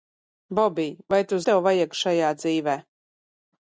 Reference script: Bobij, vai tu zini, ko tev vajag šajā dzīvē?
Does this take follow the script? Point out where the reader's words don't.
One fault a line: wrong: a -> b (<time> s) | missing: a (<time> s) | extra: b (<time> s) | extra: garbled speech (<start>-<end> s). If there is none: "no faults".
missing: zini ko (1.4 s)